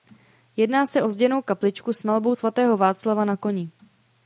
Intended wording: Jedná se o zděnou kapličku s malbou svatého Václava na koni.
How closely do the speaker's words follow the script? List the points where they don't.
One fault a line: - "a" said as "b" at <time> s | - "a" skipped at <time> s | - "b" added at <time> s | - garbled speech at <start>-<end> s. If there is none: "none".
none